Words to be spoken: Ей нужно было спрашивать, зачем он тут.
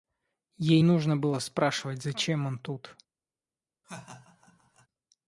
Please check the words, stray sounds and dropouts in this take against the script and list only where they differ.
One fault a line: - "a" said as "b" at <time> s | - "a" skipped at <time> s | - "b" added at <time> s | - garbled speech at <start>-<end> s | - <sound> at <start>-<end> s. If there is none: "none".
- laugh at 3.8-4.9 s